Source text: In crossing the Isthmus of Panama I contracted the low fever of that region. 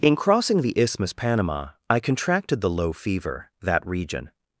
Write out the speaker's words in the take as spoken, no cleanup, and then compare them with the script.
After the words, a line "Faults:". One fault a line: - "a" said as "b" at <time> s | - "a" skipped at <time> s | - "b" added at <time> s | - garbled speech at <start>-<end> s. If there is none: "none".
In crossing the Isthmus Panama I contracted the low fever that region.
Faults:
- "of" skipped at 1.1 s
- "of" skipped at 3.5 s